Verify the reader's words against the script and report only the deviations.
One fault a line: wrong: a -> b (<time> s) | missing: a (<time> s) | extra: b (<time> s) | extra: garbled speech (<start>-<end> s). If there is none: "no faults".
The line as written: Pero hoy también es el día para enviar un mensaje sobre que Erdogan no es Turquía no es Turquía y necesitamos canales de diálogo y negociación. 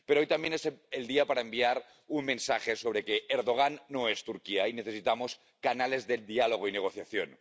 missing: no es Turquía (4.7 s)